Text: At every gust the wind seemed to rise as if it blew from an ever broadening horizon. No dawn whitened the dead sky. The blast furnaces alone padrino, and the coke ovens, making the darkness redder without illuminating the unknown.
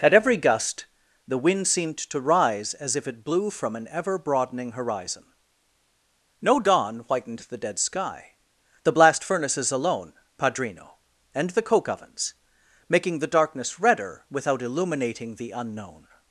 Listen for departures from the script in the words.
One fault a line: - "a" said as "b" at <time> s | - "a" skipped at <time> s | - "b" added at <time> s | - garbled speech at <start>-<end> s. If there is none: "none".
none